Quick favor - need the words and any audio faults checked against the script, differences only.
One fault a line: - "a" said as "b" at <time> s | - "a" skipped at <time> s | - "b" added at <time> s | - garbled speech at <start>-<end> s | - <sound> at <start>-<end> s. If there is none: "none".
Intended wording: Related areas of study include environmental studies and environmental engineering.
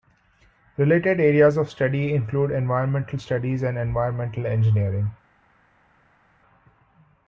none